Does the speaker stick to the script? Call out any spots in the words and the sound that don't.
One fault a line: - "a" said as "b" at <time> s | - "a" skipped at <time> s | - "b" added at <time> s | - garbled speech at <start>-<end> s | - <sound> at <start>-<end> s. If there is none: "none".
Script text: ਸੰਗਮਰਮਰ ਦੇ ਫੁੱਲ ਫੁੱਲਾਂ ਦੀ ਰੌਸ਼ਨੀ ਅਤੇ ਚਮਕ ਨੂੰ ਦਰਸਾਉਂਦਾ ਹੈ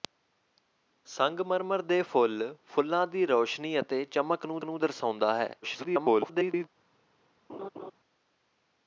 - "ਨੂੰ" added at 4.6 s
- garbled speech at 5.6-6.7 s
- laugh at 7.5-7.9 s